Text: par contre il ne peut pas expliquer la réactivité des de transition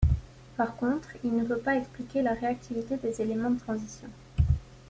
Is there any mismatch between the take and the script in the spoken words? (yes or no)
yes